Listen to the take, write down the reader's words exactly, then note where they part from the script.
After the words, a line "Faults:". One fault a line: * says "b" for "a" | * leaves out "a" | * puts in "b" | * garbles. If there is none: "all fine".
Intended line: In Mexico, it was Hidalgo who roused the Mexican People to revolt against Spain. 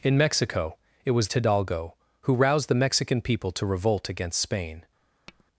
In Mexico, it was Hidalgo who roused the Mexican People to revolt against Spain.
Faults:
all fine